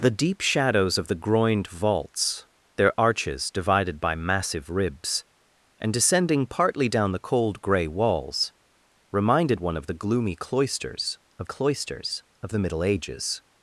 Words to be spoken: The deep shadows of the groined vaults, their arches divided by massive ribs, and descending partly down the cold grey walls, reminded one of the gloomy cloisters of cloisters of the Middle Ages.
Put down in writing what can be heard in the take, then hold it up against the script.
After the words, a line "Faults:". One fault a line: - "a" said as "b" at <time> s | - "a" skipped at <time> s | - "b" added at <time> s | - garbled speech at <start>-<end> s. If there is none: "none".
The deep shadows of the groined vaults, their arches divided by massive ribs, and descending partly down the cold grey walls, reminded one of the gloomy cloisters of cloisters of the Middle Ages.
Faults:
none